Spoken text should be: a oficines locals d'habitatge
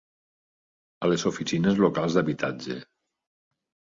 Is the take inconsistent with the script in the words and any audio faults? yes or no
yes